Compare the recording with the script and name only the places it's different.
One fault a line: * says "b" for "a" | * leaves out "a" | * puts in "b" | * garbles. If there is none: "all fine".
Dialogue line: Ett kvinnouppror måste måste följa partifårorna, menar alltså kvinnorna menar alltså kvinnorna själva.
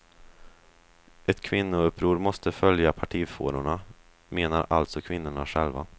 * leaves out "måste"
* leaves out "menar alltså kvinnorna"